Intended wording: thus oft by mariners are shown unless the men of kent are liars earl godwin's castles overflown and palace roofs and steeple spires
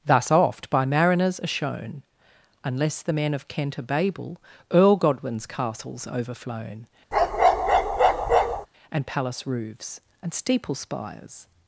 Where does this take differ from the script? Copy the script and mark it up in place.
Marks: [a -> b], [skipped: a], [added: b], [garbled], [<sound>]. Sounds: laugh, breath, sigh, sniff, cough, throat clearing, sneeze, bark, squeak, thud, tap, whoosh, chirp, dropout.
thus oft by mariners are shown unless the men of kent are [liars -> babel] earl godwin's castles overflown [bark] and palace roofs and steeple spires